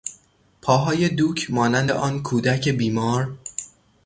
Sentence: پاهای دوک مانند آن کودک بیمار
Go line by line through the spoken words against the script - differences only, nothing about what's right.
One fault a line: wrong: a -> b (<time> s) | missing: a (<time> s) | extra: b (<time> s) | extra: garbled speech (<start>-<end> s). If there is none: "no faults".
no faults